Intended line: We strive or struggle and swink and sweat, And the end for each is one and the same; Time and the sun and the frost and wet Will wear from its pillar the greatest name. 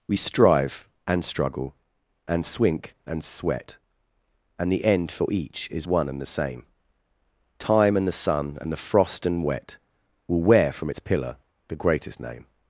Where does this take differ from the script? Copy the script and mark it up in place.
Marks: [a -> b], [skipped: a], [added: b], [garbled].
We strive [or -> and] struggle and swink and sweat, And the end for each is one and the same; Time and the sun and the frost and wet Will wear from its pillar the greatest name.